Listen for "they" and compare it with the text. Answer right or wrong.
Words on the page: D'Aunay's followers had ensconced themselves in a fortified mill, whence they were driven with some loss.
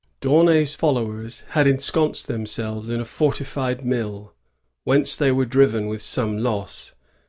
right